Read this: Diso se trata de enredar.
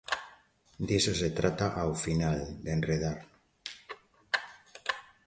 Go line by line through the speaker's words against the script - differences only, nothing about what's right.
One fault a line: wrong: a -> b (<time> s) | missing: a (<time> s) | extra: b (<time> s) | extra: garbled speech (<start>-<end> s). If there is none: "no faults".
extra: ao final (1.8 s)